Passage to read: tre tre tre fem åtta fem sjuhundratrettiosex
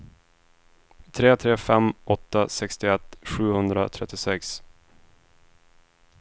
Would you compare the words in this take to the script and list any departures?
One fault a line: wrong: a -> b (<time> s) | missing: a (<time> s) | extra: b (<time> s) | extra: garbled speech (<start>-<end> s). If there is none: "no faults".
missing: tre (1.6 s)
wrong: fem -> sextioett (2.5 s)